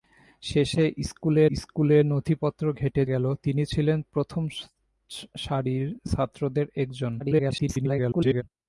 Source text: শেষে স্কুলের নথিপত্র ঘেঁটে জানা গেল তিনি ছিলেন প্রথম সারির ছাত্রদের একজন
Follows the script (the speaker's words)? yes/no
no